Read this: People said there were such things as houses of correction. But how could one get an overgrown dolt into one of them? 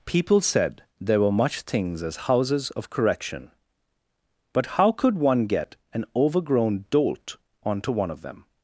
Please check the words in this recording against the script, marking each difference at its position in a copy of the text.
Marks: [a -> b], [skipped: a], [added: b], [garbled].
People said there were [such -> much] things as houses of correction. But how could one get an overgrown dolt [into -> onto] one of them?